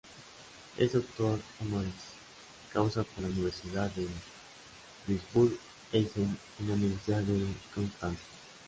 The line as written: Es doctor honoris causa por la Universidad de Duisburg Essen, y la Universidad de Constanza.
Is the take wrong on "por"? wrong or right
right